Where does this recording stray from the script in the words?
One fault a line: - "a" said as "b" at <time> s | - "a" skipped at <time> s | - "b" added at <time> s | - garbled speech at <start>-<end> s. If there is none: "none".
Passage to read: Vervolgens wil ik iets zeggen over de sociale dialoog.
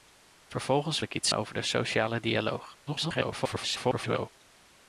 - "wil" skipped at 1.0 s
- "zeggen" skipped at 1.3 s
- garbled speech at 2.9-4.3 s